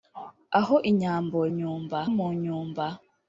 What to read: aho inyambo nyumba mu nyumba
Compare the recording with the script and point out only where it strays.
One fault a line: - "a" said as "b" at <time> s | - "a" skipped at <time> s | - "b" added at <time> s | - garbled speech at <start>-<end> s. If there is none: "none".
none